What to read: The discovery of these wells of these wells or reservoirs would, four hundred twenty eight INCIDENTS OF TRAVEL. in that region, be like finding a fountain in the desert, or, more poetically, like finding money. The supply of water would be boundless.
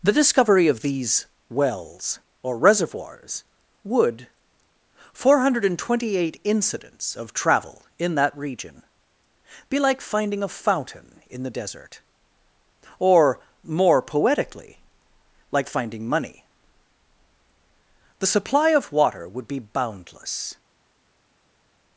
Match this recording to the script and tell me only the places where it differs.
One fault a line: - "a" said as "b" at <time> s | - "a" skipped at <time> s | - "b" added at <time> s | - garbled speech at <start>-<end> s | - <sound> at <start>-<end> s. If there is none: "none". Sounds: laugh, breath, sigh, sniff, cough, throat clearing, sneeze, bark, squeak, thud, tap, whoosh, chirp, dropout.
- "of these wells" skipped at 2.2 s